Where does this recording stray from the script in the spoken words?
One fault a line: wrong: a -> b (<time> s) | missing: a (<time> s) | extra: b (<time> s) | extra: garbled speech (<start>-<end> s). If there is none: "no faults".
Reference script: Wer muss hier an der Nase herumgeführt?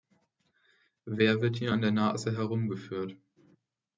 wrong: muss -> wird (1.4 s)